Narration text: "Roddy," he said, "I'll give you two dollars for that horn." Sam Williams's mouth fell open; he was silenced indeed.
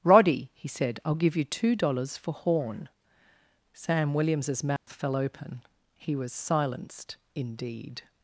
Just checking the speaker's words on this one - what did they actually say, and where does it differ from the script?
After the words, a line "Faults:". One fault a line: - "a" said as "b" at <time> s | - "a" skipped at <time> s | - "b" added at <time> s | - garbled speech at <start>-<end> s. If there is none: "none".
"Roddy," he said, "I'll give you two dollars for horn." Sam Williams's mouth fell open; he was silenced indeed.
Faults:
- "that" skipped at 2.3 s